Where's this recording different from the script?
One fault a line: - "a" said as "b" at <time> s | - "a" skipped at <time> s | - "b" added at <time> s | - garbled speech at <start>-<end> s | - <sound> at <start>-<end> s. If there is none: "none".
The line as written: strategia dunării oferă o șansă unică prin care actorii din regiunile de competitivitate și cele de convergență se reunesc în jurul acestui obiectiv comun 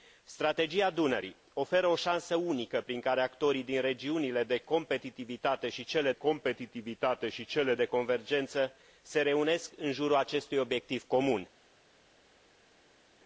- "competitivitate și cele" added at 6.1 s